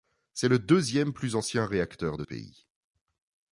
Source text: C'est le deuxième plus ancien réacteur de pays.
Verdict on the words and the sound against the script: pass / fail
pass